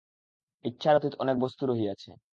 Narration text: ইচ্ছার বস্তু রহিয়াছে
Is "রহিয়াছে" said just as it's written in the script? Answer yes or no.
yes